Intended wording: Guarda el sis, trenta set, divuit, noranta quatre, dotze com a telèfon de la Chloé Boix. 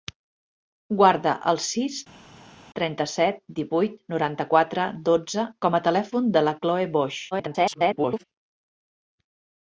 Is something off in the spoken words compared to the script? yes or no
yes